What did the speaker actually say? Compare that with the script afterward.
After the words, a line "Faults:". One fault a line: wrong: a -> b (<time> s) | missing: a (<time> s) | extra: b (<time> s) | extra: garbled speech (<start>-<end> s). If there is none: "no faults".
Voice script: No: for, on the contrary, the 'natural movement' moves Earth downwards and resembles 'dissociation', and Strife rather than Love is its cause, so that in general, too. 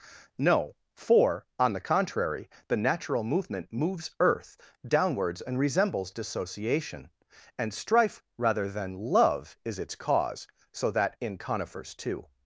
No: for, on the contrary, the 'natural movement' moves Earth downwards and resembles 'dissociation', and Strife rather than Love is its cause, so that in conifers, too.
Faults:
wrong: general -> conifers (11.4 s)